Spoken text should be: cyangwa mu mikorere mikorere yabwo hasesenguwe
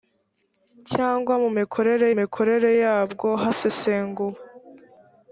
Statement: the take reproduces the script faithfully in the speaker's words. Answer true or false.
true